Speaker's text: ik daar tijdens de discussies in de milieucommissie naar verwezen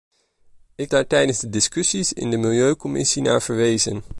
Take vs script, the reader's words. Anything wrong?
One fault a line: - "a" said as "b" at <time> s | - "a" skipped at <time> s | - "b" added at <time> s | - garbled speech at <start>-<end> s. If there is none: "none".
none